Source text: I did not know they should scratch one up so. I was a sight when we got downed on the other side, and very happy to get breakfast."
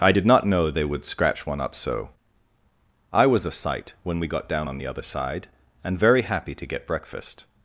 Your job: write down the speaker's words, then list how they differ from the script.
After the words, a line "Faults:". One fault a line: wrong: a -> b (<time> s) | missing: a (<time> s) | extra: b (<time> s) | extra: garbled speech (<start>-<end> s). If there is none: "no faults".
I did not know they would scratch one up so. I was a sight when we got down on the other side, and very happy to get breakfast."
Faults:
wrong: should -> would (0.9 s)
wrong: downed -> down (4.5 s)